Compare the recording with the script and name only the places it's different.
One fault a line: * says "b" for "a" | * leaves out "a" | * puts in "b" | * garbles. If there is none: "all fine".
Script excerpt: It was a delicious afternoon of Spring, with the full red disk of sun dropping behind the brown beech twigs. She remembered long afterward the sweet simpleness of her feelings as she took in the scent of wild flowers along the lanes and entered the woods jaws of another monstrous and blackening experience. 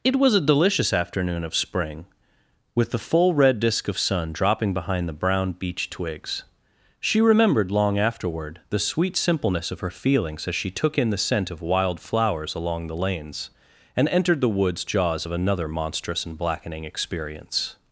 all fine